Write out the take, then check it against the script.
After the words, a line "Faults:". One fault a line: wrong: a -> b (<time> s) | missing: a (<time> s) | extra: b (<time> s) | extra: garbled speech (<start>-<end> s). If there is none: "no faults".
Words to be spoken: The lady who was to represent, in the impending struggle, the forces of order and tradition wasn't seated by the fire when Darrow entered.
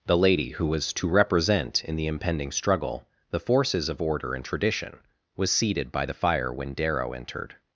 The lady who was to represent, in the impending struggle, the forces of order and tradition was seated by the fire when Darrow entered.
Faults:
wrong: wasn't -> was (5.3 s)